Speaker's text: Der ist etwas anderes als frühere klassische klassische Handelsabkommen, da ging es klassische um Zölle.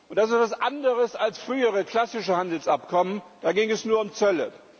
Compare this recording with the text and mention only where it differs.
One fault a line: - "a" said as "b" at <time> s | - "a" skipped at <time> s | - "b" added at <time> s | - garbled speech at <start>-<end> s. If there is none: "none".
- "Der" said as "Das" at 0.1 s
- "klassische" skipped at 2.4 s
- "klassische" said as "nur" at 3.9 s